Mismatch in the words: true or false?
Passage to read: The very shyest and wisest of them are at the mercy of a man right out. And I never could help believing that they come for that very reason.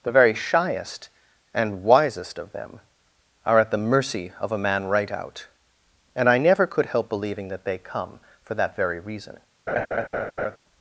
false